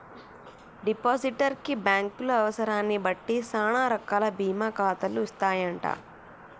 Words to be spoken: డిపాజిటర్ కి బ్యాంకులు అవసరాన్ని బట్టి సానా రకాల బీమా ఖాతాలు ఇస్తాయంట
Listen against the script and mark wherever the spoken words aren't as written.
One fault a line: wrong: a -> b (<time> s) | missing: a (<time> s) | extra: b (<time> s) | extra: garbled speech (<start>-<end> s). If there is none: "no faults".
no faults